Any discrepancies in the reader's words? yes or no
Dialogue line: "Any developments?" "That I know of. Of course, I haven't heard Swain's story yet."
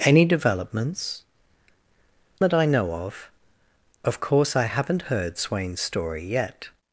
no